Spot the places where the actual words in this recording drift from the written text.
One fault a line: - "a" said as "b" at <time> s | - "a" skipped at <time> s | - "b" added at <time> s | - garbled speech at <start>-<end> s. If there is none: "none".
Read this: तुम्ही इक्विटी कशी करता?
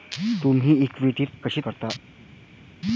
none